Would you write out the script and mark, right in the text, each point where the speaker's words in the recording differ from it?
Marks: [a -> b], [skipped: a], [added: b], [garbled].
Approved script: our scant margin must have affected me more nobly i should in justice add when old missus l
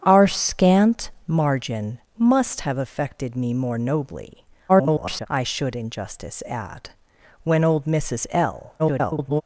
our scant margin must have affected me more nobly [garbled] i should in justice add when old missus l [garbled]